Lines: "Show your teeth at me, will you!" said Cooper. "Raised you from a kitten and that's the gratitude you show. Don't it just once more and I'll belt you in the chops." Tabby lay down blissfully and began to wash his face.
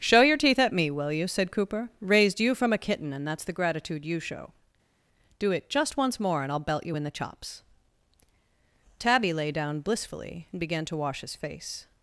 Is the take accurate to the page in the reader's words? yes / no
no